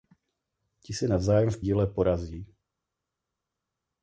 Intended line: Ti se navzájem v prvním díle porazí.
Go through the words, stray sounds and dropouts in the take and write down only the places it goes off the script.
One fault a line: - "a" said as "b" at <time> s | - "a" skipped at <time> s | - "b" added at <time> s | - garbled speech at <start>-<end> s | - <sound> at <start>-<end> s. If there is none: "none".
- "prvním" skipped at 1.6 s